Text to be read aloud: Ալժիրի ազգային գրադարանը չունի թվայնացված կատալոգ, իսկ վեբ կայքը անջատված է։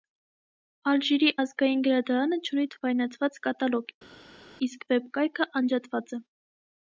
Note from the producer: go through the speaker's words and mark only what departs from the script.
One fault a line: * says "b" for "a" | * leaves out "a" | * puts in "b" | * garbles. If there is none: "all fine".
all fine